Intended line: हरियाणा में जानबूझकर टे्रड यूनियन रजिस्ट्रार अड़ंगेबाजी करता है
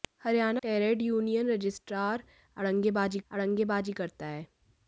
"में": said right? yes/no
no